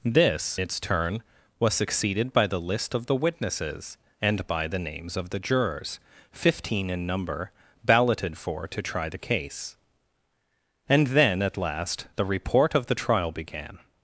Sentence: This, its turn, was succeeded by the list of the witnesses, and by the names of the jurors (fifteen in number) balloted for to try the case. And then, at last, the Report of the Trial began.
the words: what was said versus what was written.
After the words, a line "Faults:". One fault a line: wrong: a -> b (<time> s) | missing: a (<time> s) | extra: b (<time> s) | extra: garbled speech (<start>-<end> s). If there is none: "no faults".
This, its turn, was succeeded by the list of the witnesses, and by the names of the jurors (fifteen in number) balloted for to try the case. And then, at last, the Report of the Trial began.
Faults:
no faults